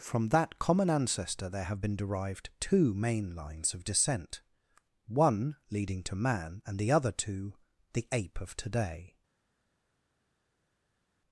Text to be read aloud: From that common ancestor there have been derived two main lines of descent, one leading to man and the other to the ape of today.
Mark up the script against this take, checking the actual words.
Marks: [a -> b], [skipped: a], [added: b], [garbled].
From that common ancestor there have been derived two main lines of descent, one leading to man and the other to the ape of today.